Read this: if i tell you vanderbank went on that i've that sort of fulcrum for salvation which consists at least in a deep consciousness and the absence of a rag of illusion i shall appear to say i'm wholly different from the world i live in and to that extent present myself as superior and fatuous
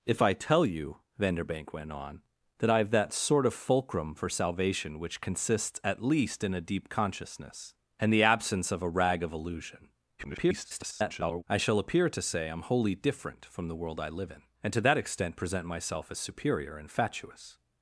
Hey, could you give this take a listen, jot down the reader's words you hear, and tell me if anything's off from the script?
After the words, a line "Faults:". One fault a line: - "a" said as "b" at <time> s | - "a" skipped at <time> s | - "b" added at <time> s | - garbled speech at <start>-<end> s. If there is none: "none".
if i tell you vanderbank went on that i've that sort of fulcrum for salvation which consists at least in a deep consciousness and the absence of a rag of illusion [garbled] i shall appear to say i'm wholly different from the world i live in and to that extent present myself as superior and fatuous
Faults:
- garbled speech at 10.2-11.4 s